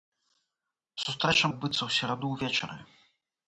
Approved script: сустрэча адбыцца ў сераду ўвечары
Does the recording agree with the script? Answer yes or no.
yes